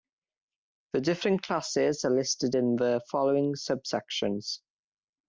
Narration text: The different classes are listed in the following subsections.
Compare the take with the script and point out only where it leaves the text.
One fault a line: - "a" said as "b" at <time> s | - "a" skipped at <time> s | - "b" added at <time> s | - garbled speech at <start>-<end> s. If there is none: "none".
none